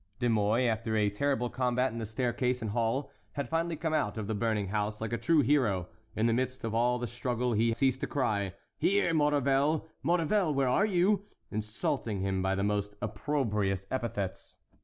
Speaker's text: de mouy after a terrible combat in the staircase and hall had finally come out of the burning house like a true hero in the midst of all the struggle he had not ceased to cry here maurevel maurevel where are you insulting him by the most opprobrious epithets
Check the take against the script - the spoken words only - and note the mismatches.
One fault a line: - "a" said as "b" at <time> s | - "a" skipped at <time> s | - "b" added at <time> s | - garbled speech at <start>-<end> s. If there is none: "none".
- "had not" skipped at 7.7 s